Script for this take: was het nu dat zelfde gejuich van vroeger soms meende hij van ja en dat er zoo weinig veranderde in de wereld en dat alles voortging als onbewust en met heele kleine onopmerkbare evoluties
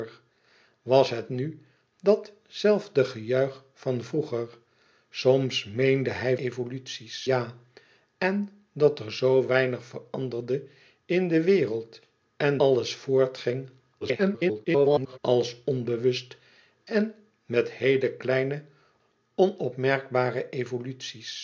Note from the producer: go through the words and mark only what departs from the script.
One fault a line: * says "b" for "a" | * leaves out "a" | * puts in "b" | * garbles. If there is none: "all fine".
* says "evoluties" for "van"
* leaves out "dat"
* garbles